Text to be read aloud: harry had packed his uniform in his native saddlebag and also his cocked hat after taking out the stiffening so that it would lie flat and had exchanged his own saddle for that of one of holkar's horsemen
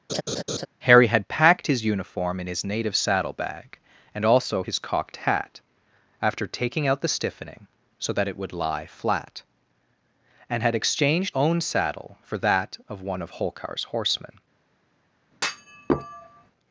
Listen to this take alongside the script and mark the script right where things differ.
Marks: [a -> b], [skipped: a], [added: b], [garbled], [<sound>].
[laugh] harry had packed his uniform in his native saddlebag and also his cocked hat after taking out the stiffening so that it would lie flat and had exchanged [skipped: his] own saddle for that of one of holkar's horsemen [thud]